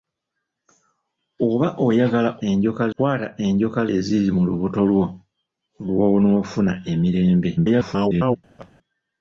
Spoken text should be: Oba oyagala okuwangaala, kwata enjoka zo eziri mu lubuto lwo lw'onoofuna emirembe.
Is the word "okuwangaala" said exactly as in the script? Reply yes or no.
no